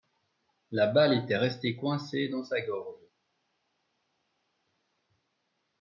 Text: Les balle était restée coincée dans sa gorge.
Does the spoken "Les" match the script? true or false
false